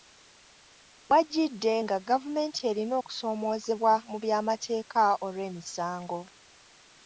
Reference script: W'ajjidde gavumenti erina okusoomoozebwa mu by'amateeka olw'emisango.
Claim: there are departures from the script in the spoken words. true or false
true